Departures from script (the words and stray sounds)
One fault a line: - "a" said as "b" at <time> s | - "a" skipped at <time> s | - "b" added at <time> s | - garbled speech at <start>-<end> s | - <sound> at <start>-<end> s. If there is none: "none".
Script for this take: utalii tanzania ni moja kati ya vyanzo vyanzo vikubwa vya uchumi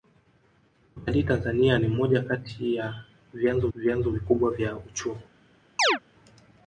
- chirp at 5.8-6.0 s